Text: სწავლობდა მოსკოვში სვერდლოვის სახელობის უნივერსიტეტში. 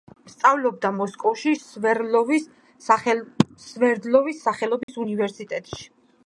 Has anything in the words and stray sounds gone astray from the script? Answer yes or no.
yes